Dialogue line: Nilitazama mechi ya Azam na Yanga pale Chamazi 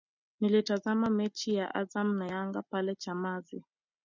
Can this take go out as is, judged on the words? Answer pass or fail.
pass